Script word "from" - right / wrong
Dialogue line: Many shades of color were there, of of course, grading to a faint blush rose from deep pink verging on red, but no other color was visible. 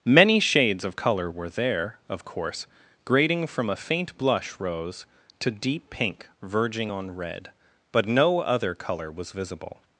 wrong